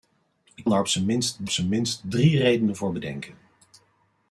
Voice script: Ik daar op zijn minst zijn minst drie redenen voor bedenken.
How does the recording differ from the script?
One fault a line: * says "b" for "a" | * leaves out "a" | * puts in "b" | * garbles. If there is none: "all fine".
all fine